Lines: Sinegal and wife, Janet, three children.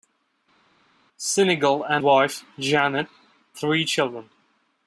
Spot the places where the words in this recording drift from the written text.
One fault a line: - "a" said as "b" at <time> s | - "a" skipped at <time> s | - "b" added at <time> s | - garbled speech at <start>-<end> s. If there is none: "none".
none